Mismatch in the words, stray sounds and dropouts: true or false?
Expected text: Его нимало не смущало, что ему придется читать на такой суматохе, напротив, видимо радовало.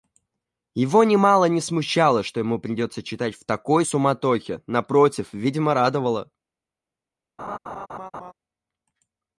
true